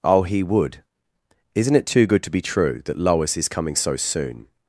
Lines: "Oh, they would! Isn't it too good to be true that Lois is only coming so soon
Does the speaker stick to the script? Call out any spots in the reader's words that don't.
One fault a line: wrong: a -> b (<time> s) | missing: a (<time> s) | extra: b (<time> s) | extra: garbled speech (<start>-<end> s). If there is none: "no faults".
wrong: they -> he (0.2 s)
missing: only (3.5 s)